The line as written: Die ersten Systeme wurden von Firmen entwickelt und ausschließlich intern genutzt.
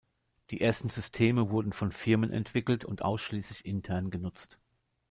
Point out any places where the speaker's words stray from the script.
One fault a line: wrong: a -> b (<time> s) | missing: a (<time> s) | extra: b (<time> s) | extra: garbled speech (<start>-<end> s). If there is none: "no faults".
no faults